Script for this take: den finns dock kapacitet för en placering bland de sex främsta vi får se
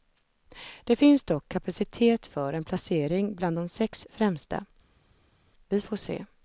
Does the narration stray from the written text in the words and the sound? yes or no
yes